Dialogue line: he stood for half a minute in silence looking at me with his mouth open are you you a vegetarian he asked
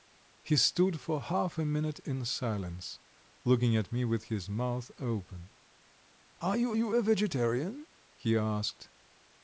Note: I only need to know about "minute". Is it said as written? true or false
true